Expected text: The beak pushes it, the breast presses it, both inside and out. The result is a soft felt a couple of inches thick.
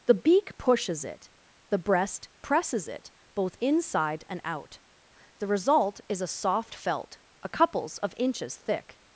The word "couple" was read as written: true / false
false